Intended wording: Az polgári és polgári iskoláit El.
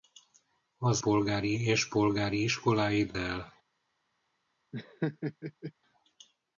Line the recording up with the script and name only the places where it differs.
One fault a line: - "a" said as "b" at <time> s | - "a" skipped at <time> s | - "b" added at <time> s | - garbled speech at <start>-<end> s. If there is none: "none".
none